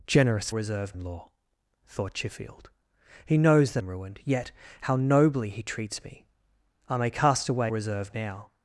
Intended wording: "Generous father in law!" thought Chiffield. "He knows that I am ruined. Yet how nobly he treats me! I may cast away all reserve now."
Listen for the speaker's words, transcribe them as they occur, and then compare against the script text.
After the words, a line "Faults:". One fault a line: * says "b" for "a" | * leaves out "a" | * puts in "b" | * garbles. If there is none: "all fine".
"Generous reserve in law!" thought Chiffield. "He knows that am ruined. Yet how nobly he treats me! I may cast away reserve now."
Faults:
* says "reserve" for "father"
* leaves out "I"
* leaves out "all"